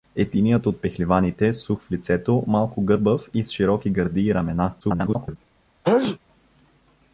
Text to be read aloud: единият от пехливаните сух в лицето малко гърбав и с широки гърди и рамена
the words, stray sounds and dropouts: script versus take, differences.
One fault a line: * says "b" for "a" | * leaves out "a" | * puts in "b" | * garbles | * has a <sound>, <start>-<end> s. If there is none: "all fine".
* garbles
* has a sneeze, 5.8-6.2 s